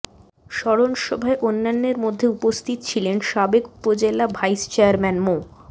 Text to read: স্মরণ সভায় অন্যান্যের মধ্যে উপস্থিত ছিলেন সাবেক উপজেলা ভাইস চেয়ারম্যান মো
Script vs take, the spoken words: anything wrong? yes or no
no